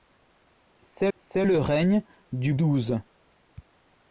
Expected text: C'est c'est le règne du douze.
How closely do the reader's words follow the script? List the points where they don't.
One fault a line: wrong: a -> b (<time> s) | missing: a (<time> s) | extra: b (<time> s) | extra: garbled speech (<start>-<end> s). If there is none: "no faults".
no faults